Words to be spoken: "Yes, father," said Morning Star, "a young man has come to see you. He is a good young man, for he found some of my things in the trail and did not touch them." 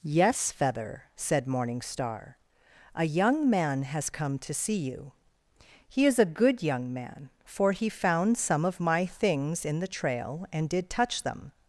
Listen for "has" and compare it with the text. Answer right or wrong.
right